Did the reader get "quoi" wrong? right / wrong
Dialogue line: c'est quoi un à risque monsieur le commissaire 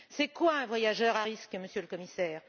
right